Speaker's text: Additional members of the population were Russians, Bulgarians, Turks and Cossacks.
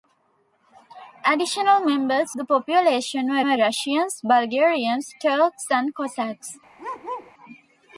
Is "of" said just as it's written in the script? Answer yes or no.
no